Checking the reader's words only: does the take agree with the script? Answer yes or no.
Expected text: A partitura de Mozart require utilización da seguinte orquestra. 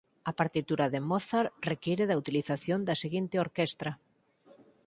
no